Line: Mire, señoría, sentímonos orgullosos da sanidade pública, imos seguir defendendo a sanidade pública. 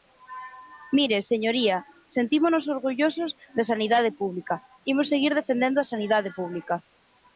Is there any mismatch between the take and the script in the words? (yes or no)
no